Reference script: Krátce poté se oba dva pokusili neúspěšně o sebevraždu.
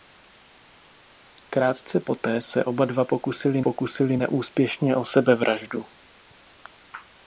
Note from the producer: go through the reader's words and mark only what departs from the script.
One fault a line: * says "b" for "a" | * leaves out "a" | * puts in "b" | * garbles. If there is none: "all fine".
* puts in "pokusili"